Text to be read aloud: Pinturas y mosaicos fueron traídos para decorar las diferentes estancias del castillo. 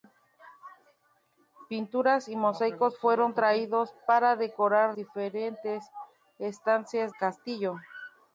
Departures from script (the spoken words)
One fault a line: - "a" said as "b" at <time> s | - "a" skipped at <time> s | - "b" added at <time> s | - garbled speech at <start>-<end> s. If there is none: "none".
- "las" skipped at 5.0 s
- "del" skipped at 7.1 s